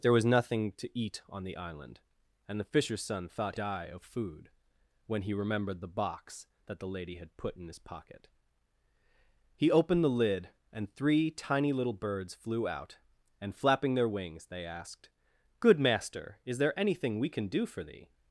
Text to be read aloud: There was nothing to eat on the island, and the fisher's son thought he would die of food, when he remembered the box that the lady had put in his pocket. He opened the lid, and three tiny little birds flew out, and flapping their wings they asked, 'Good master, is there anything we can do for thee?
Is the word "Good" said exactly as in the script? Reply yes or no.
yes